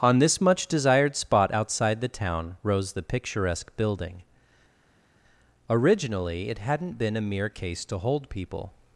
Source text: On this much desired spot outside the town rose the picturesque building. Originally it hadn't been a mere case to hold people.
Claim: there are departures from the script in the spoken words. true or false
false